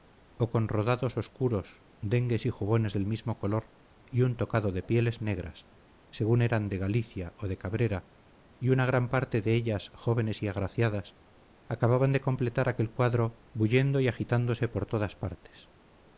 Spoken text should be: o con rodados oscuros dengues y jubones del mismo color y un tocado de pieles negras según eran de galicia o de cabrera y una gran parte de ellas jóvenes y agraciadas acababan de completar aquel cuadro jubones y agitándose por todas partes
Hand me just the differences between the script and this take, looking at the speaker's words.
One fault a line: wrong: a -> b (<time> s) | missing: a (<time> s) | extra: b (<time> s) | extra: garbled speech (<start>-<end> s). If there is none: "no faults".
wrong: jubones -> bullendo (13.5 s)